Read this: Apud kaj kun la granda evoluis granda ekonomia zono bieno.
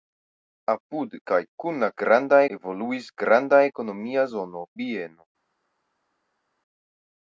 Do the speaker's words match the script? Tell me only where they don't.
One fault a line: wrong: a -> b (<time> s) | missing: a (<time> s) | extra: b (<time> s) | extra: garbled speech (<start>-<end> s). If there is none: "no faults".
no faults